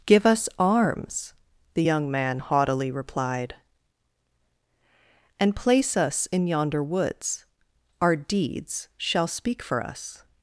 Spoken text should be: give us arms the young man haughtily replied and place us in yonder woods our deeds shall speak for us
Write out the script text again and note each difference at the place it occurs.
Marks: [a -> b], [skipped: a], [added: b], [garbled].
give us arms the young man haughtily replied and place us in yonder woods our deeds shall speak for us